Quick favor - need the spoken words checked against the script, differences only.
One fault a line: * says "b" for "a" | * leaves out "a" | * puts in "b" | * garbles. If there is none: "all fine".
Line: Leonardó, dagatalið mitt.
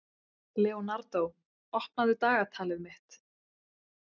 * puts in "opnaðu"